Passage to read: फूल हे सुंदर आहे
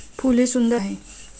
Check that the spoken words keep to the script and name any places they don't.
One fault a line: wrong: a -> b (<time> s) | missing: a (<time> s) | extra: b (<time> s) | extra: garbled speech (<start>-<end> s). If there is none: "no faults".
no faults